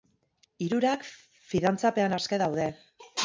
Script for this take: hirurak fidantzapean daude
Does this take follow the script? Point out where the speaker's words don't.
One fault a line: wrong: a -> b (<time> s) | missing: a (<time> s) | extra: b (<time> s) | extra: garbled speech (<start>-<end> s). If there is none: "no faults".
extra: aske (2.2 s)